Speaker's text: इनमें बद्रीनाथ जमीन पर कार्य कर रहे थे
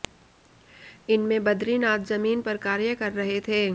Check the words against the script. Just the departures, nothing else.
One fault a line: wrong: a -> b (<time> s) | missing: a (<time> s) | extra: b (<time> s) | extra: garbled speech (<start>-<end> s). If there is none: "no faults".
no faults